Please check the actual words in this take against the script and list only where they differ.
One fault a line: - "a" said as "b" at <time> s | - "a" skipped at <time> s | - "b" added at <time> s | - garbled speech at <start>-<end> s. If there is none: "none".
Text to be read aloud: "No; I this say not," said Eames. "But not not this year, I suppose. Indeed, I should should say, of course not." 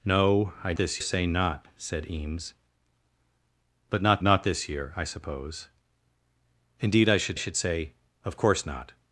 none